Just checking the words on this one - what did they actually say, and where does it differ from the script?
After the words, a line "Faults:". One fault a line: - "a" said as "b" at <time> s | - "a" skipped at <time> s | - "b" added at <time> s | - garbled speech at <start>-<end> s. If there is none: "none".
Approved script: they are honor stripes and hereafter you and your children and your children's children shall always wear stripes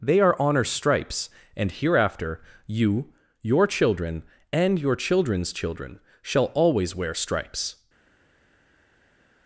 they are honor stripes and hereafter you your children and your children's children shall always wear stripes
Faults:
- "and" skipped at 3.1 s